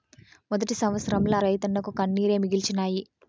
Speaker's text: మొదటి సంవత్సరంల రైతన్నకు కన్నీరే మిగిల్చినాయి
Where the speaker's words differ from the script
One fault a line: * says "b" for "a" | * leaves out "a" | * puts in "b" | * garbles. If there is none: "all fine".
all fine